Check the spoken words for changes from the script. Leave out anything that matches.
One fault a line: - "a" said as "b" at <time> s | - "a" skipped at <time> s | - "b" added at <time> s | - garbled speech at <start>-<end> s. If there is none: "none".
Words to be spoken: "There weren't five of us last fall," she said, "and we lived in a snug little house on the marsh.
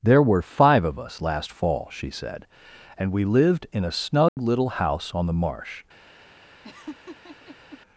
- "weren't" said as "were" at 0.2 s